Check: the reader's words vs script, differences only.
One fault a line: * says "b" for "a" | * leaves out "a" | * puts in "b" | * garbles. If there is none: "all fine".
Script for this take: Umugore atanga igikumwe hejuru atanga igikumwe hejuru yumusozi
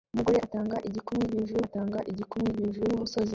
all fine